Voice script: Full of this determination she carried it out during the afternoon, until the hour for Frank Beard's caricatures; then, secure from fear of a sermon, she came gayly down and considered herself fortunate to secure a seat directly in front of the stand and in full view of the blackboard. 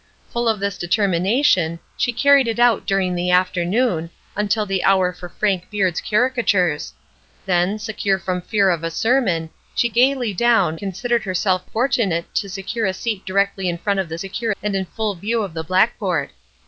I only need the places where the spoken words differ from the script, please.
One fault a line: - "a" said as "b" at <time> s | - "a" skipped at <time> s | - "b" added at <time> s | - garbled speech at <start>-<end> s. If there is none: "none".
- "came" skipped at 9.9 s
- "and" skipped at 10.8 s
- "stand" said as "secure" at 14.1 s